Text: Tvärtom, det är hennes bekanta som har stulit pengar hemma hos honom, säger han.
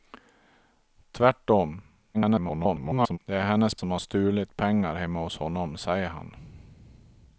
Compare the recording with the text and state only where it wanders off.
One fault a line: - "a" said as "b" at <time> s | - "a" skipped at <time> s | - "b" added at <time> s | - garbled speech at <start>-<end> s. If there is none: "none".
- garbled speech at 2.1-3.2 s
- "bekanta" skipped at 3.8 s